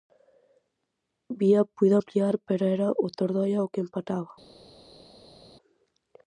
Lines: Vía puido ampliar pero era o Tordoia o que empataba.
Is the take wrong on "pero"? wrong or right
right